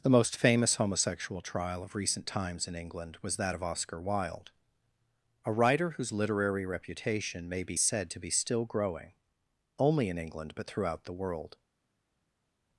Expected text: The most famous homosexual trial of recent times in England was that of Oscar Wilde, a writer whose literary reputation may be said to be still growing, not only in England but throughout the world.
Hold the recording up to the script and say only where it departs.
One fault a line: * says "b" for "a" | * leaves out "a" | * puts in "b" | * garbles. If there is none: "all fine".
* leaves out "not"